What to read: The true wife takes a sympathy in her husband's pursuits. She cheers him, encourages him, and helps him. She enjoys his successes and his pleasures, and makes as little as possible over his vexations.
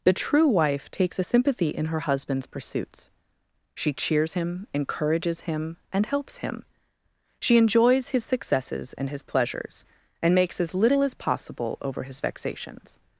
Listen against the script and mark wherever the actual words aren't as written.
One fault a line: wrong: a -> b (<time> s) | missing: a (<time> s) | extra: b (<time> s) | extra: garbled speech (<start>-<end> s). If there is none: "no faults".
no faults